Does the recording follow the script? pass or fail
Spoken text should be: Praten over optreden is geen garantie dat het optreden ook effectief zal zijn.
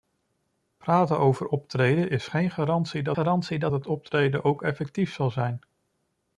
fail